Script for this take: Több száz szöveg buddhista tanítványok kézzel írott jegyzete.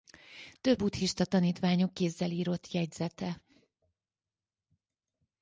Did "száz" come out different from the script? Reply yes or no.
yes